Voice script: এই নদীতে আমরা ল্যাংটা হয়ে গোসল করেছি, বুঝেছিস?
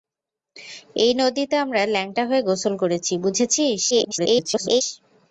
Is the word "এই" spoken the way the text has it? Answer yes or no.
yes